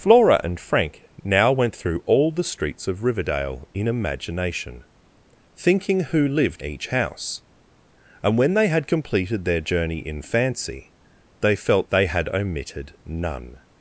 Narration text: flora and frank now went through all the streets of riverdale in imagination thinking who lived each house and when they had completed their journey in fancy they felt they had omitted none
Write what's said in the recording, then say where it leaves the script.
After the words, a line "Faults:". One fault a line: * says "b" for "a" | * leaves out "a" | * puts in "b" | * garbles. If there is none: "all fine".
flora and frank now went through all the streets of riverdale in imagination thinking who lived each house and when they had completed their journey in fancy they felt they had omitted none
Faults:
all fine